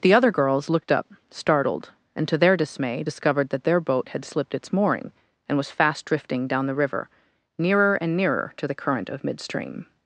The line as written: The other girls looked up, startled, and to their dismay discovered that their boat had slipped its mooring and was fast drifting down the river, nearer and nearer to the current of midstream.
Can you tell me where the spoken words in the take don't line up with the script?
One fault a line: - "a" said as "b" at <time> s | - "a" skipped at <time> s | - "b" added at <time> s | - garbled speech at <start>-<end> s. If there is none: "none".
none